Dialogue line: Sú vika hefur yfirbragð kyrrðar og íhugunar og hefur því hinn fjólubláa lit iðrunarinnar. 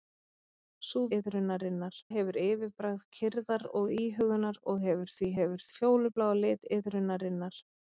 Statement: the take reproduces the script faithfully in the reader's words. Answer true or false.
false